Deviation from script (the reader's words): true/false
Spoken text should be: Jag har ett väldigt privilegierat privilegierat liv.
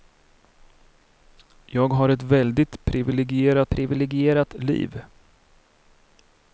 false